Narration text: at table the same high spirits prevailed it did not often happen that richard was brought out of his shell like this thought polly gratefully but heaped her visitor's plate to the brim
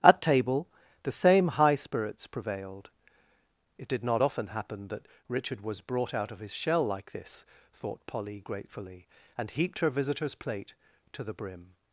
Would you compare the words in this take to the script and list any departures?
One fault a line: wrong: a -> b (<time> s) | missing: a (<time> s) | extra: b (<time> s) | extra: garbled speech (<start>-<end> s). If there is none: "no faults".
wrong: but -> and (9.4 s)